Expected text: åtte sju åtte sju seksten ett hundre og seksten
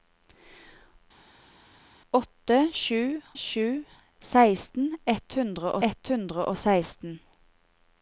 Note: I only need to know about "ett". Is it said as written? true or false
true